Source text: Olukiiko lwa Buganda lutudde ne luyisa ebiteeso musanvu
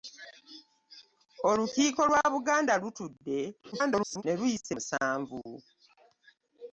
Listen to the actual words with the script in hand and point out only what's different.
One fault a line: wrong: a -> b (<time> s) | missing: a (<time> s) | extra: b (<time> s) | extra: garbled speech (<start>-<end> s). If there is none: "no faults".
extra: garbled speech (3.7-4.2 s)
missing: ebiteeso (4.7 s)